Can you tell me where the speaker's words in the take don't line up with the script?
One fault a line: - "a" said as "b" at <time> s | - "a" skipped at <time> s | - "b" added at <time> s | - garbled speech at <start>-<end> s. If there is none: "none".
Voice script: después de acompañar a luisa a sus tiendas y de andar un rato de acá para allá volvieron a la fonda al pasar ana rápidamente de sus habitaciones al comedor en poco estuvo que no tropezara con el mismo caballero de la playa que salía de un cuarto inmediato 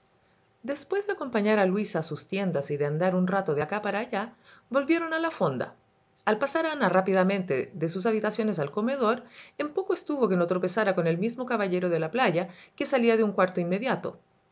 none